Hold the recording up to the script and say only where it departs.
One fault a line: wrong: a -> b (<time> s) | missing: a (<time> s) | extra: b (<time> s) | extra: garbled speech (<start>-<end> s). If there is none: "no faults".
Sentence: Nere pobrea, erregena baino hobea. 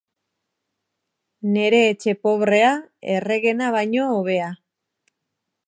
extra: etxe (1.9 s)